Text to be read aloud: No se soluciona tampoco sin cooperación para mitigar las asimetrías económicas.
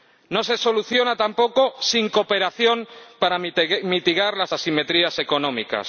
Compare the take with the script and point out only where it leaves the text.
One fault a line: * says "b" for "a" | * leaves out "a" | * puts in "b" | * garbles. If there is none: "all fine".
all fine